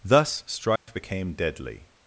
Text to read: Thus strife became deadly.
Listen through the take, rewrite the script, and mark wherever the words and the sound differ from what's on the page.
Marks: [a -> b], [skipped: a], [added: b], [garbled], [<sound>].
Thus strife [dropout] became deadly.